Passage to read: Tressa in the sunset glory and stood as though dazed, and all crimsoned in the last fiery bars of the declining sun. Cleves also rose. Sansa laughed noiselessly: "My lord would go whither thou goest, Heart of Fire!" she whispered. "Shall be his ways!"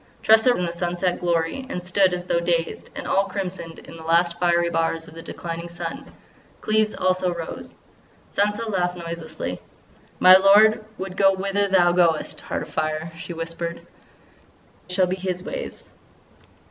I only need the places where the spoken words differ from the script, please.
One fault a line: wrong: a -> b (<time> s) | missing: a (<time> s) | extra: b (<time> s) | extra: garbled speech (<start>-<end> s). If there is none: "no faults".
no faults